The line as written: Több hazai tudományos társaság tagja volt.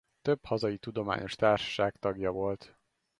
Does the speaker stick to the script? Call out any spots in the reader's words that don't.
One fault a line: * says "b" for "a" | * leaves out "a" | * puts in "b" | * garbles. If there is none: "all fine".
all fine